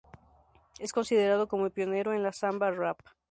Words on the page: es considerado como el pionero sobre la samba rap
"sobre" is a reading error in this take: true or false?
true